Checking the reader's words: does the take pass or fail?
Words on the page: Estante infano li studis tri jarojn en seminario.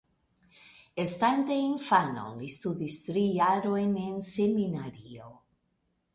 pass